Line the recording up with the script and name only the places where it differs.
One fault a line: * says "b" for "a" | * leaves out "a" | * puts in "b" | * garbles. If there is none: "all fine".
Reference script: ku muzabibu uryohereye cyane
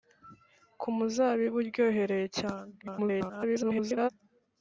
* garbles